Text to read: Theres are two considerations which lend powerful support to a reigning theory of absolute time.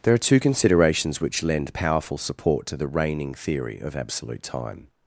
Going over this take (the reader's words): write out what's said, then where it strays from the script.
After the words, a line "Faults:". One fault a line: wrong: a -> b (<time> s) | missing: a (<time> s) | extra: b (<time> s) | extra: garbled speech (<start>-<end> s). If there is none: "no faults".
There are two considerations which lend powerful support to the reigning theory of absolute time.
Faults:
wrong: Theres -> There (0.0 s)
wrong: a -> the (2.8 s)